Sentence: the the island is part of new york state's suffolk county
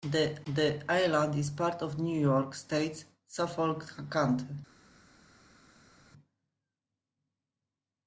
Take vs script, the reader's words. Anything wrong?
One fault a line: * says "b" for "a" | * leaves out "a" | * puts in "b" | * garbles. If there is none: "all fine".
all fine